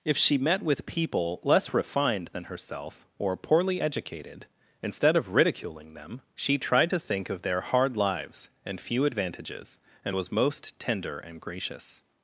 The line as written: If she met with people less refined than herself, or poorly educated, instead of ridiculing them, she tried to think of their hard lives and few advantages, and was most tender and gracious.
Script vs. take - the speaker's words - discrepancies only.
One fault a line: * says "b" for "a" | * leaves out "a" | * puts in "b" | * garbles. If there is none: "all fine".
all fine